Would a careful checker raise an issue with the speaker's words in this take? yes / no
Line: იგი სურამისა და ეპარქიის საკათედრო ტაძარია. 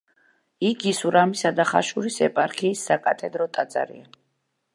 yes